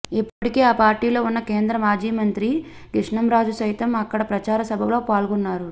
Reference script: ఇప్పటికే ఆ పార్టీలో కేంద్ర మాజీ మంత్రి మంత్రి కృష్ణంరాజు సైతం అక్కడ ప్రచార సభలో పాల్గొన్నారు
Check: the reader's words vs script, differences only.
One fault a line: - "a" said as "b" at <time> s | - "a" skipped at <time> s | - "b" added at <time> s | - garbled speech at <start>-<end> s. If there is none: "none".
- "ఉన్న" added at 1.2 s
- "మంత్రి" skipped at 2.5 s